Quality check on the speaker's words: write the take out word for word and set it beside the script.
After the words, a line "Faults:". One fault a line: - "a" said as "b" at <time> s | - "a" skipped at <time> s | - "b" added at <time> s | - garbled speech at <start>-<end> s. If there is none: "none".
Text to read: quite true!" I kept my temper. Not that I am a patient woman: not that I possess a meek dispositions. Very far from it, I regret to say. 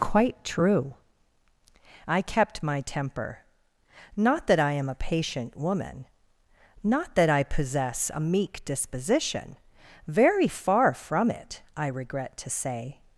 quite true!" I kept my temper. Not that I am a patient woman: not that I possess a meek disposition. Very far from it, I regret to say.
Faults:
- "dispositions" said as "disposition" at 8.6 s